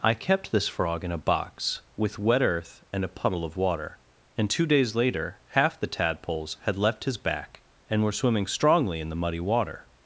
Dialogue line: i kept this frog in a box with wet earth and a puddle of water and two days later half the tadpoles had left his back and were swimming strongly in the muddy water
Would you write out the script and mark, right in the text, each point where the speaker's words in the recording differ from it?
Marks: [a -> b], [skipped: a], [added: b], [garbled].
i kept this frog in a box with wet earth and a puddle of water and two days later half the tadpoles had left his back and were swimming strongly in the muddy water